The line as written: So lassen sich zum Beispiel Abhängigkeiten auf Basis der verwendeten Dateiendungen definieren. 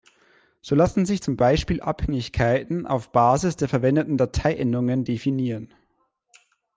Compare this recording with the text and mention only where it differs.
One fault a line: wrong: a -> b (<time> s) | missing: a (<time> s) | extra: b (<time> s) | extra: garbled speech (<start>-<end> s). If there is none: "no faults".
no faults